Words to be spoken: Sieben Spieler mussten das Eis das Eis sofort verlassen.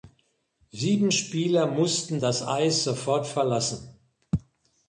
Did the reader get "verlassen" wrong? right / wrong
right